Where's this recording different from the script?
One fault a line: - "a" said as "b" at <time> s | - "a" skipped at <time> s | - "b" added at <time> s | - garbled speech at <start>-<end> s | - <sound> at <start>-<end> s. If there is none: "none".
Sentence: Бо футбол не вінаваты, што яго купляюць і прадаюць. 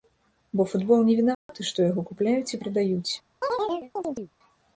- dropout at 1.3-1.5 s
- chirp at 3.4-4.3 s